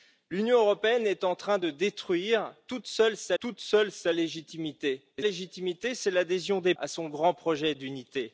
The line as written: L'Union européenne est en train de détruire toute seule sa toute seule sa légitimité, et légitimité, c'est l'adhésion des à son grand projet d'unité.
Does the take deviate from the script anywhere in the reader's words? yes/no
no